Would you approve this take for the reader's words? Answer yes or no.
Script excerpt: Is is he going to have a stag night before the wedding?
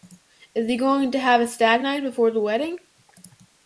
no